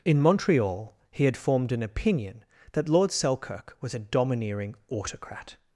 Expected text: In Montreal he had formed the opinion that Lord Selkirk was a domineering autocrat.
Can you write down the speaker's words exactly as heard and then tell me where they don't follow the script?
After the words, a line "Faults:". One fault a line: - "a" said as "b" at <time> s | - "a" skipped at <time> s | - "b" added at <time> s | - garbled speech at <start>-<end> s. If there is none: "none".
In Montreal he had formed an opinion that Lord Selkirk was a domineering autocrat.
Faults:
- "the" said as "an" at 1.7 s